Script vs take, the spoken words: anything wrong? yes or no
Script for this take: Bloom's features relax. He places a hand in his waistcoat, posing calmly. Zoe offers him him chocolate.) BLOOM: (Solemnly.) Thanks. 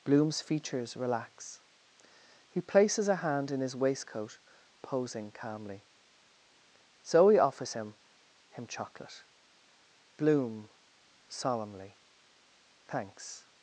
no